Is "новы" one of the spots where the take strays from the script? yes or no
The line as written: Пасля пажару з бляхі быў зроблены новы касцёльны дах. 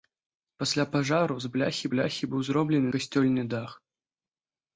yes